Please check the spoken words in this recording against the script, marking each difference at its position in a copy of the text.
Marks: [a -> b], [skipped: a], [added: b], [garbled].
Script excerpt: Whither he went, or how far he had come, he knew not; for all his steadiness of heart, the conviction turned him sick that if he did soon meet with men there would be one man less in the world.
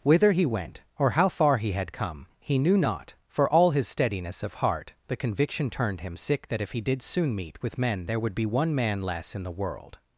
Whither he went, or how far he had come, he knew not; for all his steadiness of heart, the conviction turned him sick that if he did soon meet with men there would be one man less in the world.